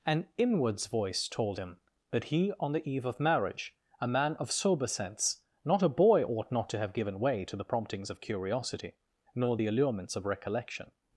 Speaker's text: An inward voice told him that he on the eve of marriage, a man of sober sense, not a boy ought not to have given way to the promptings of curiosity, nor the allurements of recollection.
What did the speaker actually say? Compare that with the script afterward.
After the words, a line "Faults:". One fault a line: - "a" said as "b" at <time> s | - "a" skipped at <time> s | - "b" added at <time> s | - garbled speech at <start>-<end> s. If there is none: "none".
An inwards voice told him that he on the eve of marriage, a man of sober sense, not a boy ought not to have given way to the promptings of curiosity, nor the allurements of recollection.
Faults:
- "inward" said as "inwards" at 0.4 s